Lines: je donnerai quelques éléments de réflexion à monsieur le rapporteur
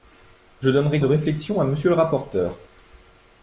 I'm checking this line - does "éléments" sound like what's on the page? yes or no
no